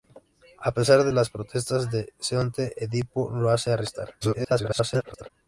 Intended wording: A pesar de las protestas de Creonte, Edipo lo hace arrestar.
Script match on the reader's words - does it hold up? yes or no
no